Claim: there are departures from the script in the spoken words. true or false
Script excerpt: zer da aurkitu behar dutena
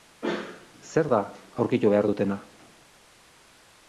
false